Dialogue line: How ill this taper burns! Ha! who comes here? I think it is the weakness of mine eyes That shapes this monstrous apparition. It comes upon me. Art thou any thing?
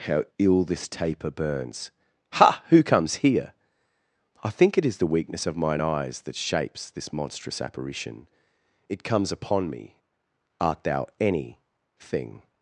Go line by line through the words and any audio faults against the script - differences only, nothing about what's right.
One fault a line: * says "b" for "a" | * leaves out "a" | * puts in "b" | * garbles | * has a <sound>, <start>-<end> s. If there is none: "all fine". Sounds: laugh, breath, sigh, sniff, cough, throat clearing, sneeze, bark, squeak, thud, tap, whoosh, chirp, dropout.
all fine